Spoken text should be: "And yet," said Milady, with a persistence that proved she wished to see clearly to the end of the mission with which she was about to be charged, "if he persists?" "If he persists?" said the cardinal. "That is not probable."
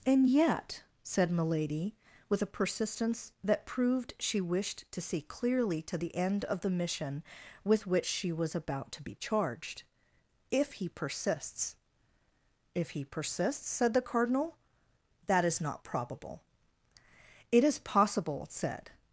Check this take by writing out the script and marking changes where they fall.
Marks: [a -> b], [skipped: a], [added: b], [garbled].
"And yet," said Milady, with a persistence that proved she wished to see clearly to the end of the mission with which she was about to be charged, "if he persists?" "If he persists?" said the cardinal. "That is not probable." [added: It is possible said]